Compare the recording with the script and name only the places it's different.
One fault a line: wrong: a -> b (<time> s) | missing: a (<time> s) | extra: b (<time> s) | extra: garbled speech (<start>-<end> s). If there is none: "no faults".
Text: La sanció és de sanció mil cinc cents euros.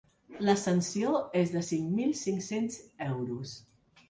wrong: sanció -> cinc (1.6 s)